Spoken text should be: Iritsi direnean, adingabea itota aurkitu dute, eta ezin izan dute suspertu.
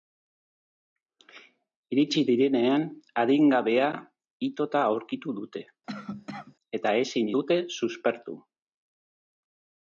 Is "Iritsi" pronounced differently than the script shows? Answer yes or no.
no